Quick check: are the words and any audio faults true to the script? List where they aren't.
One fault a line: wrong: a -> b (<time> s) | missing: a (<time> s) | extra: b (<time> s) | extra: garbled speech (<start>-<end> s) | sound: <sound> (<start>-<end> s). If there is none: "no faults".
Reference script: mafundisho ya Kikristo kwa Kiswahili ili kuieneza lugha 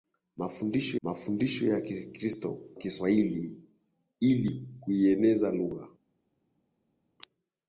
extra: mafundisho (1.0 s)
missing: kwa (2.5 s)